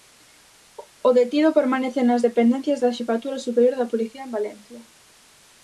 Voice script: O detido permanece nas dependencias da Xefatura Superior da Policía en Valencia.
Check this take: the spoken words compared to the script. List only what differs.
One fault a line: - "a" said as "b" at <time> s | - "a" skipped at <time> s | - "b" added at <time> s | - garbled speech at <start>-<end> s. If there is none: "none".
none